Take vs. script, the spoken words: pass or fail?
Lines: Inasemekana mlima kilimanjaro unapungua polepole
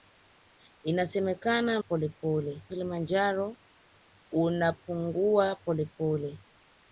fail